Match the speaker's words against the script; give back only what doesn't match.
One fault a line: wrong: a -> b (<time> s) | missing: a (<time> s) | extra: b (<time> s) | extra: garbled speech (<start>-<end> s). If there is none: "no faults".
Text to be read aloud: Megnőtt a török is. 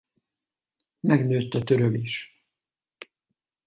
no faults